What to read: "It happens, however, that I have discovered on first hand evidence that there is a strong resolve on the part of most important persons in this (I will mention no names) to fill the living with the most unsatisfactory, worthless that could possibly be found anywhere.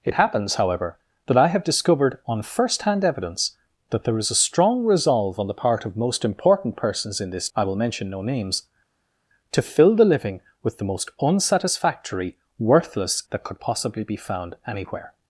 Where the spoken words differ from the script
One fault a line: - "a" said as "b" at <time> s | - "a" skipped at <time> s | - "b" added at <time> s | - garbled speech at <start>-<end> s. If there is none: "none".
none